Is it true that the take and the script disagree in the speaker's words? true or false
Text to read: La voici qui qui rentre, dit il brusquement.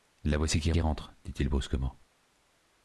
false